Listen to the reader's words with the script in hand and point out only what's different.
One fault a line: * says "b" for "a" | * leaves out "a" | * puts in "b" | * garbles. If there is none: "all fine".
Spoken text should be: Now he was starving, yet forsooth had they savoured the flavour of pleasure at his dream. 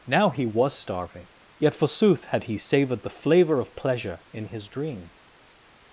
* says "he" for "they"
* says "in" for "at"